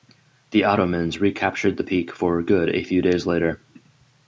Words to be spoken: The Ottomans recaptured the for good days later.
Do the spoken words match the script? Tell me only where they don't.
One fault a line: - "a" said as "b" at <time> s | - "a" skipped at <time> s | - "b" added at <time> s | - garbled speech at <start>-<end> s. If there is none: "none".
- "peak" added at 1.8 s
- "a few" added at 2.7 s